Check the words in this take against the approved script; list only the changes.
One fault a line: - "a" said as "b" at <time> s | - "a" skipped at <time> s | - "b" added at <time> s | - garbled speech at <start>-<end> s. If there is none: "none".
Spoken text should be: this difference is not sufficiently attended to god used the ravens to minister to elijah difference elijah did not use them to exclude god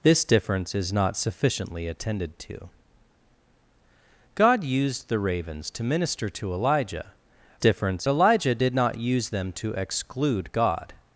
none